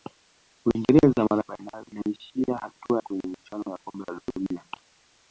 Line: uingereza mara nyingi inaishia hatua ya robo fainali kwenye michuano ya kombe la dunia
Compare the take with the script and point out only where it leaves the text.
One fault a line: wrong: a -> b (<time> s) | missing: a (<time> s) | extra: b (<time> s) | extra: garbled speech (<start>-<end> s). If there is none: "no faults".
wrong: nyingi -> fainali (1.5 s)
missing: ya robo fainali (3.0 s)